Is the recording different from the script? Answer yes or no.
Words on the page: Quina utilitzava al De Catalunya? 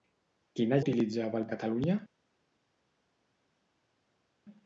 no